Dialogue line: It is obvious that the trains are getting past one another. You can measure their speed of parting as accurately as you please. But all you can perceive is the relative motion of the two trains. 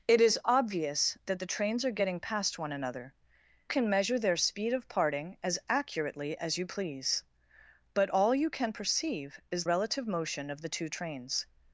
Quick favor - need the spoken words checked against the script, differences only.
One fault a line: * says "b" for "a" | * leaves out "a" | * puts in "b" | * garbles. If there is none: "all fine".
* leaves out "You"
* leaves out "the"